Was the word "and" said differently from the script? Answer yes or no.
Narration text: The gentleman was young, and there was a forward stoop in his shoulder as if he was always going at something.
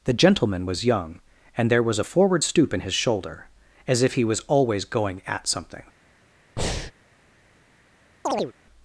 no